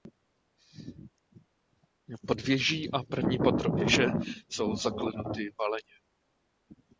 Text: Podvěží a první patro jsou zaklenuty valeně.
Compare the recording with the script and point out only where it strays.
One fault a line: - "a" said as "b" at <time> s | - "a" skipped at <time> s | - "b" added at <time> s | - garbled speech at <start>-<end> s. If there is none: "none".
- "věže" added at 3.7 s